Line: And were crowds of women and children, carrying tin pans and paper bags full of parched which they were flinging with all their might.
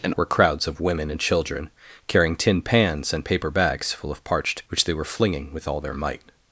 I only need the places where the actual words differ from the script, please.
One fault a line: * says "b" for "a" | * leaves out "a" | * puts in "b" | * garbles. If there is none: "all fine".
all fine